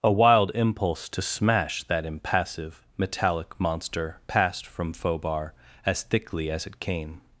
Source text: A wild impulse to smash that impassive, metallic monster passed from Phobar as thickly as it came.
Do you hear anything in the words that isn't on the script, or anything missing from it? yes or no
no